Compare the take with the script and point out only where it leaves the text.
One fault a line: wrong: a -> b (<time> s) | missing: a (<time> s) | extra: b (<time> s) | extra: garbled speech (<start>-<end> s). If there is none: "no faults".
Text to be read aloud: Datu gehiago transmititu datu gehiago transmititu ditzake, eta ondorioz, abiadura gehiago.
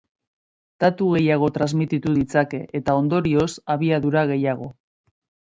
missing: datu gehiago transmititu (2.1 s)